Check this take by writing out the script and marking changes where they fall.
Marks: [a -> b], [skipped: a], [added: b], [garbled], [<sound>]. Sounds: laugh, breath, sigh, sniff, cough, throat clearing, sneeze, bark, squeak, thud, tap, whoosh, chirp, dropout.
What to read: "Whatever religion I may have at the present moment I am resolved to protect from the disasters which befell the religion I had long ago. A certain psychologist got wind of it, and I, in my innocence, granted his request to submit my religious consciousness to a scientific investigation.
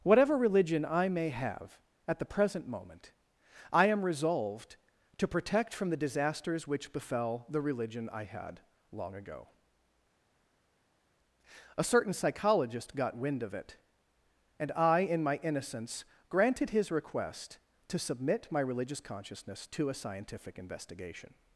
"Whatever religion I may have at the present moment I am resolved to protect from the disasters which befell the religion I had long ago. A certain psychologist got wind of it, and I, in my innocence, granted his request to submit my religious consciousness to a scientific investigation.